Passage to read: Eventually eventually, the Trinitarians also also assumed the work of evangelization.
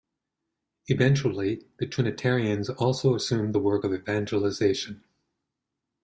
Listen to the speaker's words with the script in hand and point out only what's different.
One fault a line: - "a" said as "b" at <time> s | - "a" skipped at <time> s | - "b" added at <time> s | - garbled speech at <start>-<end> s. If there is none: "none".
- "eventually" skipped at 1.6 s
- "also" skipped at 3.1 s